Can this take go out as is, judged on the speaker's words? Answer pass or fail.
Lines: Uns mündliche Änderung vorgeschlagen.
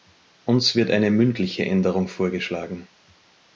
fail